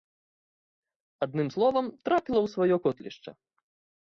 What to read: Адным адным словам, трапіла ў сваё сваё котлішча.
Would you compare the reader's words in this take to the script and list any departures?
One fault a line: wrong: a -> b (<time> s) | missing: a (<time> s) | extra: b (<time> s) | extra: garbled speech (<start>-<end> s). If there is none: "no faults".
missing: адным (1.5 s)
missing: сваё (2.8 s)